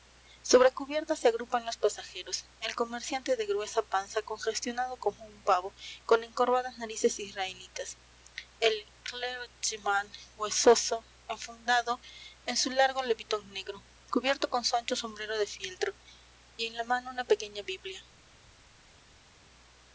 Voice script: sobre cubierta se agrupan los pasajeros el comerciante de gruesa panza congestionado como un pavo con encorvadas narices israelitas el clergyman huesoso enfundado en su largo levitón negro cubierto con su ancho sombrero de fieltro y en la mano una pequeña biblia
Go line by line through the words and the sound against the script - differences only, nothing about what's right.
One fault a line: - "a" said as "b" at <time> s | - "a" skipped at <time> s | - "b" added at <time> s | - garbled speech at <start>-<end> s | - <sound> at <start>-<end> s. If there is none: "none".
none